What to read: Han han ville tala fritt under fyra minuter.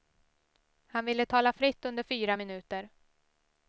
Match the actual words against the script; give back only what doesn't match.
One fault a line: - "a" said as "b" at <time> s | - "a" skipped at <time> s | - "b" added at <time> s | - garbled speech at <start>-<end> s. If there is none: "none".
- "han" skipped at 1.1 s